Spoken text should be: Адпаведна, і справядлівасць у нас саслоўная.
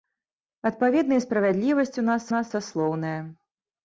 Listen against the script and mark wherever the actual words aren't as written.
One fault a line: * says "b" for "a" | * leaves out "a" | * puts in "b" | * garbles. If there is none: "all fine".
* puts in "нас"